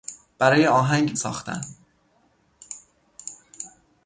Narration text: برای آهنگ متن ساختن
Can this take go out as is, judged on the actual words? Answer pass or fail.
fail